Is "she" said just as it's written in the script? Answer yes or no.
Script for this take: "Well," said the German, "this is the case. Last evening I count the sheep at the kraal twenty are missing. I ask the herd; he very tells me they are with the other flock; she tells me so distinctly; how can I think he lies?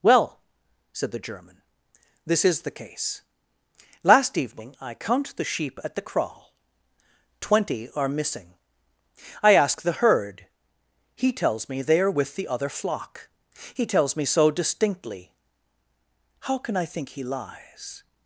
no